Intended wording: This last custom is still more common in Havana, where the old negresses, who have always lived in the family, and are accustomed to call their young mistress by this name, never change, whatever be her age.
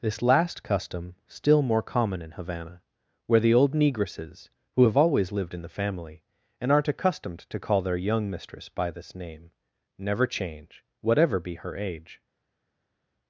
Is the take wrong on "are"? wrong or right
wrong